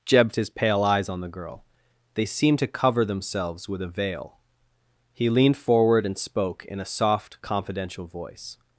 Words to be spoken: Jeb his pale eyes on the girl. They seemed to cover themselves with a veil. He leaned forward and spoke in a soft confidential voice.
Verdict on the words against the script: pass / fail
pass